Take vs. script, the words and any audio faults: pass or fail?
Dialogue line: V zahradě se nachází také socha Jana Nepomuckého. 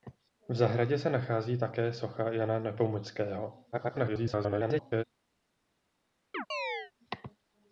fail